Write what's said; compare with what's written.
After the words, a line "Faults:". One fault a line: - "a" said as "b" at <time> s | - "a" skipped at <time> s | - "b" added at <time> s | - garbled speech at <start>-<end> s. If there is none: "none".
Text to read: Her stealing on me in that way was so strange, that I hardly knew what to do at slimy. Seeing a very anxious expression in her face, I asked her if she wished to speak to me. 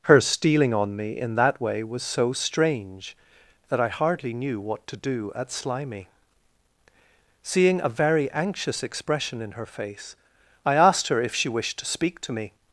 Her stealing on me in that way was so strange, that I hardly knew what to do at slimy. Seeing a very anxious expression in her face, I asked her if she wished to speak to me.
Faults:
none